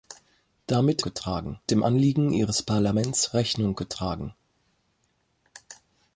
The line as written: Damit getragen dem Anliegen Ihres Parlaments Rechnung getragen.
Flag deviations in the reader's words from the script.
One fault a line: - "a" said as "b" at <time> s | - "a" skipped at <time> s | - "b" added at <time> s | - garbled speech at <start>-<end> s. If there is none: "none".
none